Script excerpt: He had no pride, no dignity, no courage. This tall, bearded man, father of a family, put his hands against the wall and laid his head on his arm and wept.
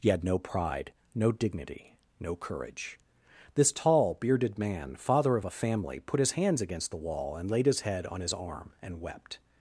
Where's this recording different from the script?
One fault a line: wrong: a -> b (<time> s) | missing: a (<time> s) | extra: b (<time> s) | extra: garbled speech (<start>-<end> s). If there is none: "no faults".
no faults